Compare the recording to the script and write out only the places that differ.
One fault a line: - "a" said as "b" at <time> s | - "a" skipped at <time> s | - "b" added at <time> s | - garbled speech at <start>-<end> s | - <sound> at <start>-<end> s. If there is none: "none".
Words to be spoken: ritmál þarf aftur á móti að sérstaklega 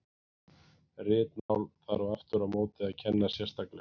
- dropout at 1.4-1.5 s
- "kenna" added at 3.0 s